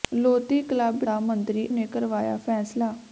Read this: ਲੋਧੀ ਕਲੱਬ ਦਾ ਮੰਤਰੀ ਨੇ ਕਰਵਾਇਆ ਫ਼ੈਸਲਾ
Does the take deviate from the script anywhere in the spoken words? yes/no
no